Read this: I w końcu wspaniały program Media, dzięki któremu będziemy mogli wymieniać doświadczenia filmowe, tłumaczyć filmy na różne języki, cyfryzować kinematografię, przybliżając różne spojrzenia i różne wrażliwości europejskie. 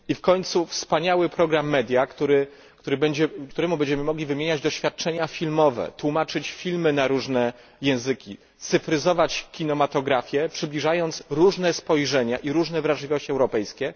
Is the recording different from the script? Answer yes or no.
yes